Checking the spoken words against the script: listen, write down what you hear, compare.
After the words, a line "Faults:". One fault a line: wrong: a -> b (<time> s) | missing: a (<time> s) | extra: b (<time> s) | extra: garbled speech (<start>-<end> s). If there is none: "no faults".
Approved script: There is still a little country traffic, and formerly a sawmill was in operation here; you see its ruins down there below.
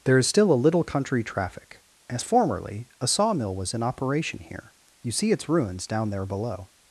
There is still a little country traffic, as formerly a sawmill was in operation here; you see its ruins down there below.
Faults:
wrong: and -> as (2.1 s)